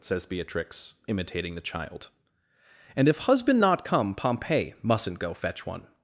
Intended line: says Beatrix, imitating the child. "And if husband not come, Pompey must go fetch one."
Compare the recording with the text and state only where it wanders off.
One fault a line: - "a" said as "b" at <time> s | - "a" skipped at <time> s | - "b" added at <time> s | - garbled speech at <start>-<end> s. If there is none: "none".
- "must" said as "mustn't" at 4.8 s